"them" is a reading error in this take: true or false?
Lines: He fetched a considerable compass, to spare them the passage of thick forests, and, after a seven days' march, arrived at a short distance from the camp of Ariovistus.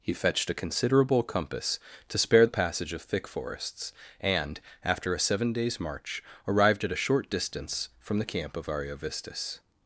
true